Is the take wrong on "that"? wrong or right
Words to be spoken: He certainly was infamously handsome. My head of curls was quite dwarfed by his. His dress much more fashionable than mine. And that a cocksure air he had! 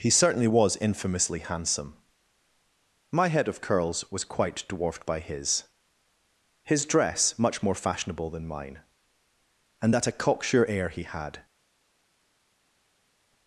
right